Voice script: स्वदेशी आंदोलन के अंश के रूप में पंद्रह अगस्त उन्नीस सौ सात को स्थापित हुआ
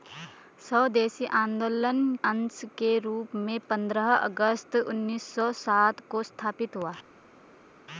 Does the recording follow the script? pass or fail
fail